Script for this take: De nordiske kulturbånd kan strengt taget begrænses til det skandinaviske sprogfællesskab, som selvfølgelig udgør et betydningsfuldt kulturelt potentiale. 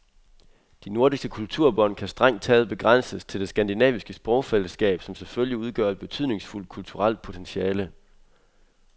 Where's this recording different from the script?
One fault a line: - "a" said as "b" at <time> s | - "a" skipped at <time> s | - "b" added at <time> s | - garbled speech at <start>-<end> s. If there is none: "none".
none